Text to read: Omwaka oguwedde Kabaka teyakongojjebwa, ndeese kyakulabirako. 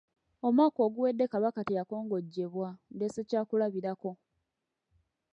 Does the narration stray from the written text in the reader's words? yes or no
no